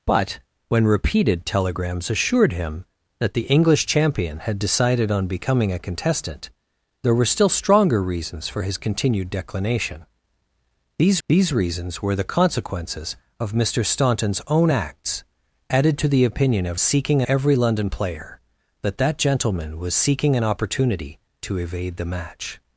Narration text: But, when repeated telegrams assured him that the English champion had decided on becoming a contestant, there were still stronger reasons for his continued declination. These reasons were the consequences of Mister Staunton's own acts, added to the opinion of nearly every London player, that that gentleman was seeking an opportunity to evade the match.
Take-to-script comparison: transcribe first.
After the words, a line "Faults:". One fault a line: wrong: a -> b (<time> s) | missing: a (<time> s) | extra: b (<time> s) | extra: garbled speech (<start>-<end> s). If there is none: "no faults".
But, when repeated telegrams assured him that the English champion had decided on becoming a contestant, there were still stronger reasons for his continued declination. These these reasons were the consequences of Mister Staunton's own acts, added to the opinion of seeking every London player, that that gentleman was seeking an opportunity to evade the match.
Faults:
extra: these (11.3 s)
wrong: nearly -> seeking (16.8 s)